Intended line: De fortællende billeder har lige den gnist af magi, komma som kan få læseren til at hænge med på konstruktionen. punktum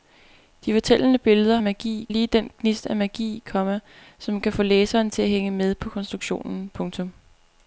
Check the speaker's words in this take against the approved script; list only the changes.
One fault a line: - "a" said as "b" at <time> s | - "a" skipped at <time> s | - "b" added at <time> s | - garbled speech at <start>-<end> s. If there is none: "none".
- "har" said as "magi" at 1.6 s